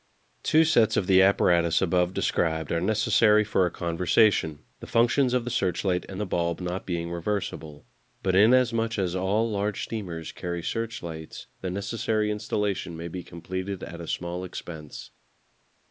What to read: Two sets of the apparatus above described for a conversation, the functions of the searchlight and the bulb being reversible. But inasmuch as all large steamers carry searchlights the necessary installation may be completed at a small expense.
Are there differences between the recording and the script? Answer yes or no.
yes